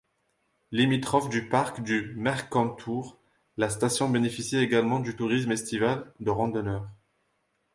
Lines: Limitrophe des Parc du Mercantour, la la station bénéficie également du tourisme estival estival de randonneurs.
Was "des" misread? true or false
true